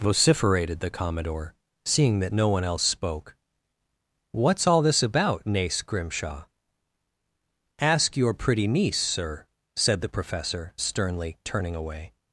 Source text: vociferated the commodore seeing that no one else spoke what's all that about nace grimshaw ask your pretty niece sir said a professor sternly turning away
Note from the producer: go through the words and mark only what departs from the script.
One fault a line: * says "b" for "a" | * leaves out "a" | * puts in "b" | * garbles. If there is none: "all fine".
* says "this" for "that"
* says "the" for "a"